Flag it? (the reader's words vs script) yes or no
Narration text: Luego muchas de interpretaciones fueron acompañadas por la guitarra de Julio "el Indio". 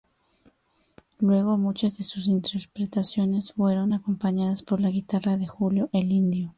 yes